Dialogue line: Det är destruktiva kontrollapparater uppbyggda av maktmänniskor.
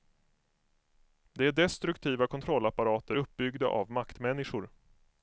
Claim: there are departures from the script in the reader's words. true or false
false